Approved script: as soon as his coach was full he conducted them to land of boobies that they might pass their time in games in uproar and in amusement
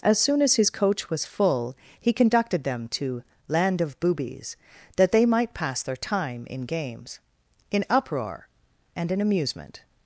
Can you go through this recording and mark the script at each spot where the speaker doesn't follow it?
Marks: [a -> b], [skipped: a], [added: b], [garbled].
as soon as his coach was full he conducted them to land of boobies that they might pass their time in games in uproar and in amusement